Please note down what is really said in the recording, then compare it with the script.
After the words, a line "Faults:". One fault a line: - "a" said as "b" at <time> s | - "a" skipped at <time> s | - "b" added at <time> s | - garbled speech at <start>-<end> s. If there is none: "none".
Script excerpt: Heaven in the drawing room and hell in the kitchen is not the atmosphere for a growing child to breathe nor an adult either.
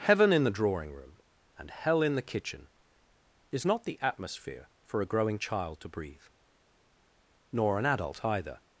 Heaven in the drawing room and hell in the kitchen is not the atmosphere for a growing child to breathe nor an adult either.
Faults:
none